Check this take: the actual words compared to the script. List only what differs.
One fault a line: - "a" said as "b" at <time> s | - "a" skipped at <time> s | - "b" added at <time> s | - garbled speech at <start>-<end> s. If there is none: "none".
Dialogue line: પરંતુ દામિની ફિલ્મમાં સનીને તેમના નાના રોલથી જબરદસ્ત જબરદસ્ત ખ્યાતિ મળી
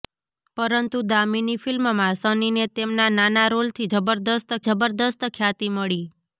none